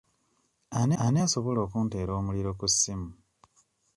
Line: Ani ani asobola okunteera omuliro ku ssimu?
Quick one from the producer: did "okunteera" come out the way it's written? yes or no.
yes